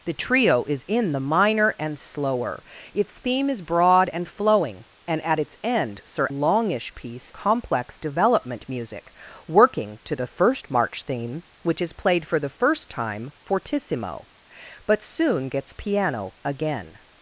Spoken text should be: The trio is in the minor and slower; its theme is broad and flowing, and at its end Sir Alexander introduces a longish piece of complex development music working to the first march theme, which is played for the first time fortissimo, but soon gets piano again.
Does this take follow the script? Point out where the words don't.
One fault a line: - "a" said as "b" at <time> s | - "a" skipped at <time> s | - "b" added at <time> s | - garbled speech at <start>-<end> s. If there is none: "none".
- "Alexander introduces a" skipped at 6.3 s
- "of" skipped at 7.3 s